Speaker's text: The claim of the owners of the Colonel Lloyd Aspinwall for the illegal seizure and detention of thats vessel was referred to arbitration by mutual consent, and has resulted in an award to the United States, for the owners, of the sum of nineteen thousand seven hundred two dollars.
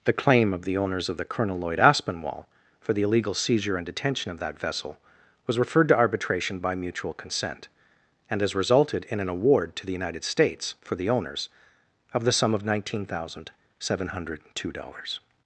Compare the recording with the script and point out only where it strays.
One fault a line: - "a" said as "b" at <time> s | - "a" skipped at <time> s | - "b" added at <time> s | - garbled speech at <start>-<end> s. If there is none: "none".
- "thats" said as "that" at 4.4 s